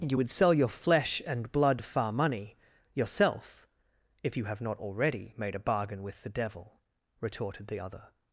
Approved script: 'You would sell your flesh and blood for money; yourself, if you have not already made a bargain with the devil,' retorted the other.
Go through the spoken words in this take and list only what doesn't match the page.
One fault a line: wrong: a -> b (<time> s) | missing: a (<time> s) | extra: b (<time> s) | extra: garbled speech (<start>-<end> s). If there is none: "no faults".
wrong: for -> far (1.8 s)